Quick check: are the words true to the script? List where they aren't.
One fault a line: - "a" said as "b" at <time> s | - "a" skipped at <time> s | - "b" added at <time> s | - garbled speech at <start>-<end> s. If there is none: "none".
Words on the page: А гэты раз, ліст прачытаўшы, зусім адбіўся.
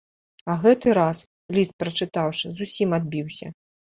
none